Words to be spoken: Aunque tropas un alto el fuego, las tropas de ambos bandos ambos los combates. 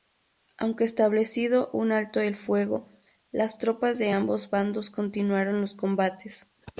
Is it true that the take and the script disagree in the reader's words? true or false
true